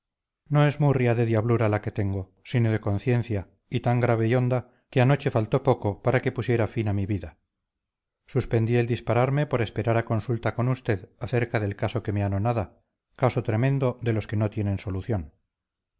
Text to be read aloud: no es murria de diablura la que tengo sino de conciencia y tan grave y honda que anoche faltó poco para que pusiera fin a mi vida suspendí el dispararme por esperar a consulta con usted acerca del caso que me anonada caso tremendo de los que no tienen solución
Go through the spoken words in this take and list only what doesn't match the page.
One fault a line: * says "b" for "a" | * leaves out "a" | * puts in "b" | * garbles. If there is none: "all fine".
all fine